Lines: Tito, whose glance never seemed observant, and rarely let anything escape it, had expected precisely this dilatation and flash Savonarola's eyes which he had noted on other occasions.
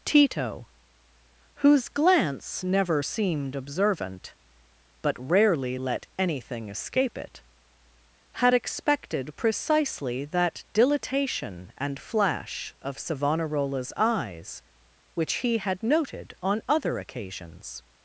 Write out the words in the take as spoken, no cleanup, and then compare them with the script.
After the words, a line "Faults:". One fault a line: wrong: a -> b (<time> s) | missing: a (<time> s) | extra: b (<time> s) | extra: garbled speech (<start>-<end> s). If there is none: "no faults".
Tito, whose glance never seemed observant, but rarely let anything escape it, had expected precisely that dilatation and flash of Savonarola's eyes which he had noted on other occasions.
Faults:
wrong: and -> but (5.0 s)
wrong: this -> that (10.3 s)
extra: of (12.8 s)